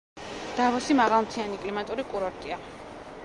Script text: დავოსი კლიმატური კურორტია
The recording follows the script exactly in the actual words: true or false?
false